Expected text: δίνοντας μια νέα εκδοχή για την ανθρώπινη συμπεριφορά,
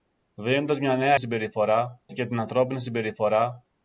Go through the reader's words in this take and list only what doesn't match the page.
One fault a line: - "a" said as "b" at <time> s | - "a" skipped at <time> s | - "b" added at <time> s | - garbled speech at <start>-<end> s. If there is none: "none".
- "εκδοχή" said as "συμπεριφορά" at 1.2 s